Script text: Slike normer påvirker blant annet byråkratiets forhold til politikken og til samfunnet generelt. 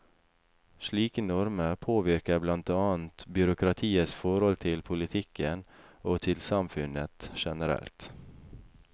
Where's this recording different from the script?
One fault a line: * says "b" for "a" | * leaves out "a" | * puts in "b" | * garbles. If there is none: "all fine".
all fine